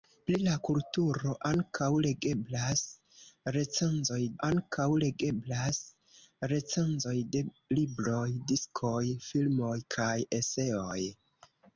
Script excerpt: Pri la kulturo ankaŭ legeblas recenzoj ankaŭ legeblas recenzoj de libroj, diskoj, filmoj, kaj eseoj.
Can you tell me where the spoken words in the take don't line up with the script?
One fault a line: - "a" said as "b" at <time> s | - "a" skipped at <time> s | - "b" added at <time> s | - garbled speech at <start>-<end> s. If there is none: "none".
none